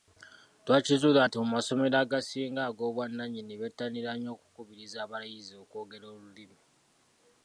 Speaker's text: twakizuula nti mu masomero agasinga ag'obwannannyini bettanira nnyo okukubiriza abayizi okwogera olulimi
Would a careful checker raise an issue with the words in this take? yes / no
no